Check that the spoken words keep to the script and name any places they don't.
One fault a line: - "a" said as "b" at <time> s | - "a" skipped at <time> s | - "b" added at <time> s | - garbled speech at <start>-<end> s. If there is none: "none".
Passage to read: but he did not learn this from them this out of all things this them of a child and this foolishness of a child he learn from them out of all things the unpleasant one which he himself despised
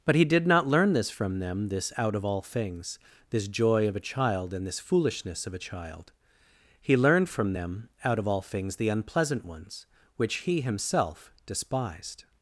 - "them" said as "joy" at 3.5 s
- "learn" said as "learned" at 7.0 s
- "one" said as "ones" at 9.4 s